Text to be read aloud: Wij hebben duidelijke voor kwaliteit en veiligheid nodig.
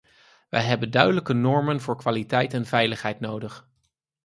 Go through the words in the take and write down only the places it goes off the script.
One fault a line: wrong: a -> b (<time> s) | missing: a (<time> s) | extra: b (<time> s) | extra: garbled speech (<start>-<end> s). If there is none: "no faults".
extra: normen (1.3 s)